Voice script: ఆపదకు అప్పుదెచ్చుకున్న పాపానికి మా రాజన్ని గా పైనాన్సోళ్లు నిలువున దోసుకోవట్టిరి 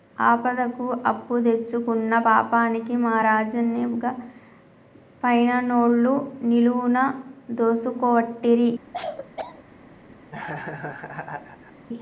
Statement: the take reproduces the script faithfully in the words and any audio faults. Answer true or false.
false